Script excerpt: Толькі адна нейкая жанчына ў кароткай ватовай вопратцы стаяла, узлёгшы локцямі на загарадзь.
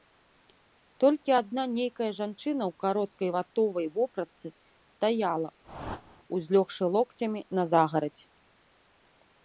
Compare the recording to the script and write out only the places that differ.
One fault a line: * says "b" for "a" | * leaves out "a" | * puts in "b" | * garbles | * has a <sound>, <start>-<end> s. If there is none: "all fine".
* has a whoosh, 5.6-6.2 s